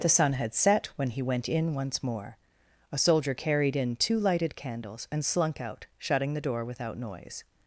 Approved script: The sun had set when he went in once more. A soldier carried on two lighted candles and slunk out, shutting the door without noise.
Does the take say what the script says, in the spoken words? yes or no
no